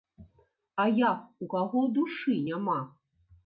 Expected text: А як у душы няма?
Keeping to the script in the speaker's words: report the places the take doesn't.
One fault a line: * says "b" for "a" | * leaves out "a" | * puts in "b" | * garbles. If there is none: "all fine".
* puts in "каго"